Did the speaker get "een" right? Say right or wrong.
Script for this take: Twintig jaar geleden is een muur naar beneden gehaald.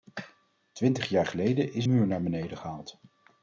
wrong